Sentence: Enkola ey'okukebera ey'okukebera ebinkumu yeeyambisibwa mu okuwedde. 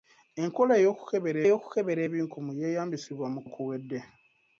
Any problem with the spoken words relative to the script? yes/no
no